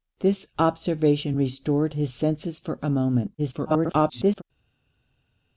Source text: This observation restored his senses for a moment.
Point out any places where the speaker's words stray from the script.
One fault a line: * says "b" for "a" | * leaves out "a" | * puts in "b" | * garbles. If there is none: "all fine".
* garbles